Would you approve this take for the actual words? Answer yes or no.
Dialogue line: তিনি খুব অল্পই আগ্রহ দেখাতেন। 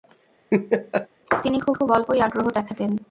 no